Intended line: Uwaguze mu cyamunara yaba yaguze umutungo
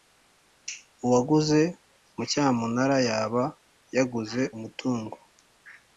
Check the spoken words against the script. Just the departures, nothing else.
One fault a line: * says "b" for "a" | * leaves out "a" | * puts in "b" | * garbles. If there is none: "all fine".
all fine